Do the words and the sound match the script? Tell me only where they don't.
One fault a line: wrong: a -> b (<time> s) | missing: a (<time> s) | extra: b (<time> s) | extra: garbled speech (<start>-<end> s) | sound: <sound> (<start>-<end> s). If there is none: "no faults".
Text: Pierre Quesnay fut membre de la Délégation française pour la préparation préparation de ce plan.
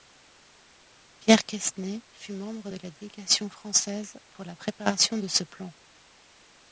missing: préparation (5.2 s)